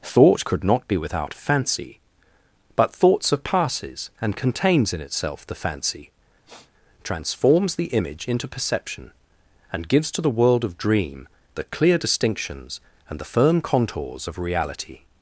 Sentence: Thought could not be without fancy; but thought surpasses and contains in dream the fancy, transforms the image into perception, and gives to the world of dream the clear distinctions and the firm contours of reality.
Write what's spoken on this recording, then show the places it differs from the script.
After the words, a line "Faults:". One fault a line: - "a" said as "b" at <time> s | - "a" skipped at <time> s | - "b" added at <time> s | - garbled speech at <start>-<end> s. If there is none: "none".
Thought could not be without fancy; but thought surpasses and contains in itself the fancy, transforms the image into perception, and gives to the world of dream the clear distinctions and the firm contours of reality.
Faults:
- "dream" said as "itself" at 5.0 s